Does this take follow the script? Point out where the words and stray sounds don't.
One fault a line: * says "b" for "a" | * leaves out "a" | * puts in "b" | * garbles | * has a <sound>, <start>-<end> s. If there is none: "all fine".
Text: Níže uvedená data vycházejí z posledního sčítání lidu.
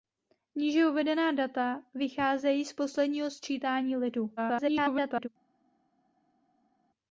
* garbles